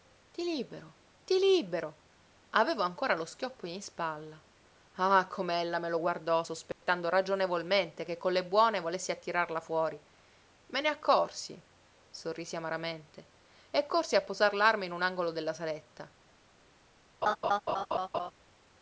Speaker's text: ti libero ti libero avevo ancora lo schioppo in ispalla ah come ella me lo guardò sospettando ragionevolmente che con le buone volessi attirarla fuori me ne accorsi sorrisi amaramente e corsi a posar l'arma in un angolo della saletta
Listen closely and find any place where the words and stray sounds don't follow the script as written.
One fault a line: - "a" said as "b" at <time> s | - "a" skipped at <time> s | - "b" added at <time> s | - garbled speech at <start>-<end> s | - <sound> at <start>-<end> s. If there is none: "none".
- dropout at 6.7-6.8 s
- laugh at 17.2-18.3 s